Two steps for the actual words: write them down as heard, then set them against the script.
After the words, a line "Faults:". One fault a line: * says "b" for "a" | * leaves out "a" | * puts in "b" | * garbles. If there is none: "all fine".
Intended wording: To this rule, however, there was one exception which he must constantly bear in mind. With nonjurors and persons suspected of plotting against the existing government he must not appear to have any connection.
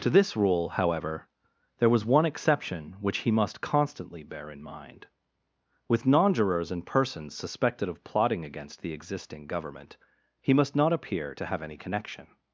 To this rule, however, there was one exception which he must constantly bear in mind. With nonjurors and persons suspected of plotting against the existing government he must not appear to have any connection.
Faults:
all fine